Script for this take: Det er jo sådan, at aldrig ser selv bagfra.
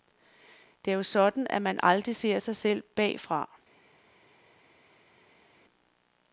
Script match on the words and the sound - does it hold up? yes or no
no